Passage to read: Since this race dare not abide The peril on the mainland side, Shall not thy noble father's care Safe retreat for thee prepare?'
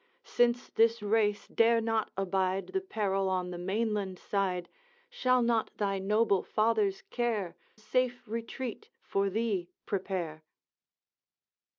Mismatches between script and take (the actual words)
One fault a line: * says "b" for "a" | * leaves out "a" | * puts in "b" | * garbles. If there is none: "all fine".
all fine